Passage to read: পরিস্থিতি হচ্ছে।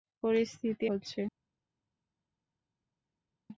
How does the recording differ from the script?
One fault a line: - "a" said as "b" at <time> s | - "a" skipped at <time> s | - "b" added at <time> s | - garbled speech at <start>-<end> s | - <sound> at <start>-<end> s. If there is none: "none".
none